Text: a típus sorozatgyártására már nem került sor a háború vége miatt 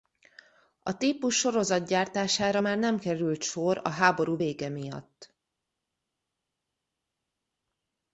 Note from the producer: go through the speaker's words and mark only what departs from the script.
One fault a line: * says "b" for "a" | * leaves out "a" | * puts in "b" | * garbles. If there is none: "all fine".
all fine